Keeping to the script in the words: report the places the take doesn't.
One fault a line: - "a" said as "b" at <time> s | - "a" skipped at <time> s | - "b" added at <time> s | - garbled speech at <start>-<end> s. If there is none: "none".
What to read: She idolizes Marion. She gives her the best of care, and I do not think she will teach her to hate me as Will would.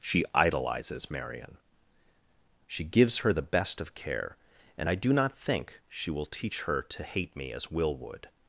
none